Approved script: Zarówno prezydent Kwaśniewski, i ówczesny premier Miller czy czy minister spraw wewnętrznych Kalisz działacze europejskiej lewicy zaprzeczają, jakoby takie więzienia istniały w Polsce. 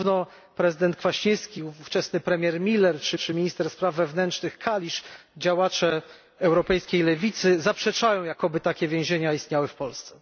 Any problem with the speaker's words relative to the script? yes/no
no